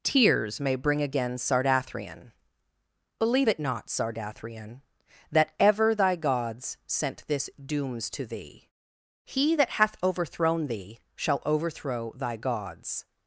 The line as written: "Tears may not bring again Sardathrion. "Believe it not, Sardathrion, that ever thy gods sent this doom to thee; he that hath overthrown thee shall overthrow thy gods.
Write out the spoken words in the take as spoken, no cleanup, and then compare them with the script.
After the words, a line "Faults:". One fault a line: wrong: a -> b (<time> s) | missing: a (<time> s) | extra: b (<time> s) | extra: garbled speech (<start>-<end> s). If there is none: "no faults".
"Tears may bring again Sardathrion. "Believe it not, Sardathrion, that ever thy gods sent this dooms to thee; he that hath overthrown thee shall overthrow thy gods.
Faults:
missing: not (0.8 s)
wrong: doom -> dooms (7.6 s)